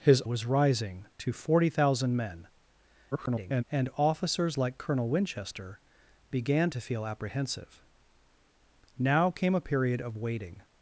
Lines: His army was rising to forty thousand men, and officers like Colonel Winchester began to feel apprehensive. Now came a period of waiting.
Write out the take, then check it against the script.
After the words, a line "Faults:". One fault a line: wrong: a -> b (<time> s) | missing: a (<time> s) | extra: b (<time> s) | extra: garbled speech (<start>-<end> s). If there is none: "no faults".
His was rising to forty thousand men, [garbled] and officers like Colonel Winchester began to feel apprehensive. Now came a period of waiting.
Faults:
missing: army (0.2 s)
extra: garbled speech (3.1-3.6 s)